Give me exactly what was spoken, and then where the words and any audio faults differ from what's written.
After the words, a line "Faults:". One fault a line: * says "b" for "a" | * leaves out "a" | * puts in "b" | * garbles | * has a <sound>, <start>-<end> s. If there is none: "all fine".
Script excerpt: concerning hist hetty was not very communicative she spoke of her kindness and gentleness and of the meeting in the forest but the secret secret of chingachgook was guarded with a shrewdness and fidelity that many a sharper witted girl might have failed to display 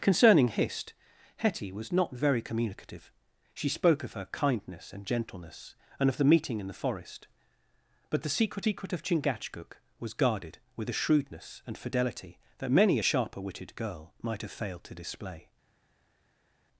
concerning hist hetty was not very communicative she spoke of her kindness and gentleness and of the meeting in the forest but the secret secret of chingachgook was guarded with a shrewdness and fidelity that many a sharper witted girl might have failed to display
Faults:
all fine